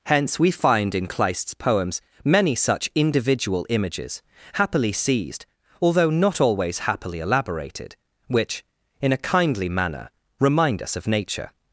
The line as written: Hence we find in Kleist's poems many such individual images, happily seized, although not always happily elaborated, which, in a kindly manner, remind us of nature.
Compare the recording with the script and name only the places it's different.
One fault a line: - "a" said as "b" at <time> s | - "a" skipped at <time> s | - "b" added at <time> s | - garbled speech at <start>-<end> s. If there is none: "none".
none